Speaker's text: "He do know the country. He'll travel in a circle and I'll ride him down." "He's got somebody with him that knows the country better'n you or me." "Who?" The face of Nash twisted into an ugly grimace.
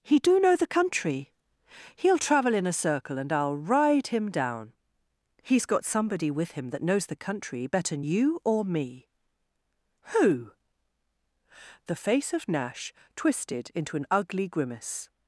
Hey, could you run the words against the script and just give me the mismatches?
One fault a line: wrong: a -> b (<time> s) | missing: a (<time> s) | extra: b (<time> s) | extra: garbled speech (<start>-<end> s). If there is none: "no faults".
no faults